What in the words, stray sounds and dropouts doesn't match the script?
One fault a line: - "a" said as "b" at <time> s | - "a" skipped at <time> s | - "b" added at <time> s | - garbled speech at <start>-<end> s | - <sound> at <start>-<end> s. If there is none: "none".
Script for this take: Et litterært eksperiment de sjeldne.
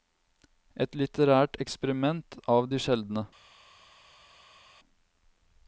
- "av" added at 2.5 s